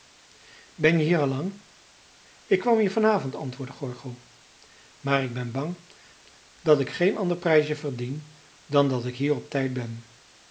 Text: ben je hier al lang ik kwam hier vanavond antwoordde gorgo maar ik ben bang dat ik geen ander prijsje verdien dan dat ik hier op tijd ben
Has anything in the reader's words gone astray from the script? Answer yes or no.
no